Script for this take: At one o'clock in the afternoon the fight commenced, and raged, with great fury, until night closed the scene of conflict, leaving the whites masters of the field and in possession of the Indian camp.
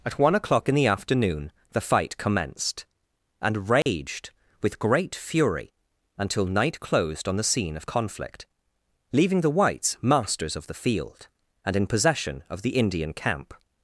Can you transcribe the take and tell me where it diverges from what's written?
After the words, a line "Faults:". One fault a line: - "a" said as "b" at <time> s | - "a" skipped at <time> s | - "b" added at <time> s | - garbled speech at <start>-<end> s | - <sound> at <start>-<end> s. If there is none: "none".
At one o'clock in the afternoon the fight commenced, and raged, with great fury, until night closed on the scene of conflict, leaving the whites masters of the field and in possession of the Indian camp.
Faults:
- dropout at 3.8-3.9 s
- "on" added at 7.3 s